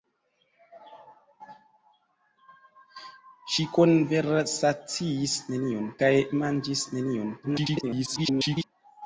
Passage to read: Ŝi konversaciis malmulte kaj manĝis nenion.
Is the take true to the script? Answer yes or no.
no